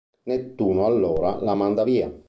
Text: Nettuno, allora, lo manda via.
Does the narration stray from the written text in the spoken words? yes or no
yes